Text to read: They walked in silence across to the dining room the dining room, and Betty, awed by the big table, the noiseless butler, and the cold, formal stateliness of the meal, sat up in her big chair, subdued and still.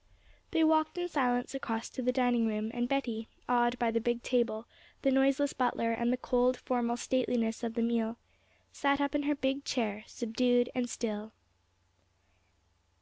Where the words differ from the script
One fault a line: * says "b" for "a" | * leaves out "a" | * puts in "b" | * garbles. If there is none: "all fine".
* leaves out "the dining room"